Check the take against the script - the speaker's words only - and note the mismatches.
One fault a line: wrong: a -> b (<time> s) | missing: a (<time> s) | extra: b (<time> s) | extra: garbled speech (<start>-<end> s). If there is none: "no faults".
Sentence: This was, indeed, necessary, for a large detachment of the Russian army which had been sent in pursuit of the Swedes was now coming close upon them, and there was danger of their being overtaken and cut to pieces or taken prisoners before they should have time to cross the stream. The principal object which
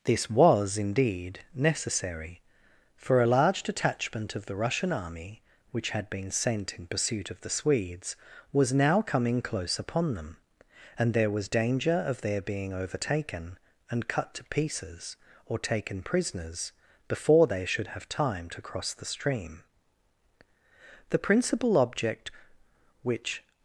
no faults